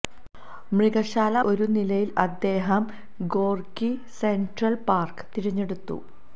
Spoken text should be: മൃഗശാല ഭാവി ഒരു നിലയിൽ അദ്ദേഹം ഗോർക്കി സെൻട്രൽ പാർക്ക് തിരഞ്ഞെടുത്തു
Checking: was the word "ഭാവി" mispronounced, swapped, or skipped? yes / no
yes